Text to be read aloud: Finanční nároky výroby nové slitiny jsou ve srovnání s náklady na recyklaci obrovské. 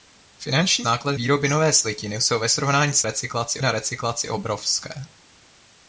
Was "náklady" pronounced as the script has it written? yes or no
no